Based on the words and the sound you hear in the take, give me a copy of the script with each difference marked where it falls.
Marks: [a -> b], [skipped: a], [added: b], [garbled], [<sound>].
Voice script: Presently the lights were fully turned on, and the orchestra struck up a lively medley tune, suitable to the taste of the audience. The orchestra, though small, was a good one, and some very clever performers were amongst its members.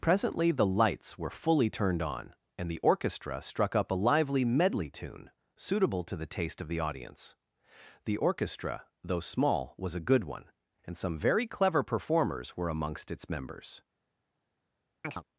Presently the lights were fully turned on, and the orchestra struck up a lively medley tune, suitable to the taste of the audience. The orchestra, though small, was a good one, and some very clever performers were amongst its members. [chirp]